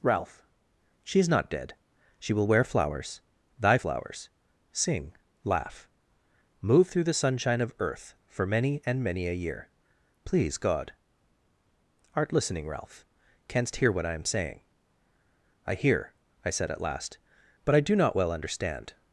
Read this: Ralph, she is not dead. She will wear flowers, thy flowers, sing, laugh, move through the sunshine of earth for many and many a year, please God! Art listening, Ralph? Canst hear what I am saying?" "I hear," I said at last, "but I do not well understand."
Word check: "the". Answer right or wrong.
right